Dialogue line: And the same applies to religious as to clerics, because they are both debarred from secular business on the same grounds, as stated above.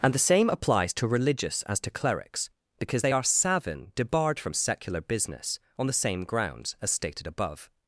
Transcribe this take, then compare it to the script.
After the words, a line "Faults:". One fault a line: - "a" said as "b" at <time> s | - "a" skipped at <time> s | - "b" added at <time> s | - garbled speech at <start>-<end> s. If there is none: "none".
And the same applies to religious as to clerics, because they are savin debarred from secular business on the same grounds, as stated above.
Faults:
- "both" said as "savin" at 3.2 s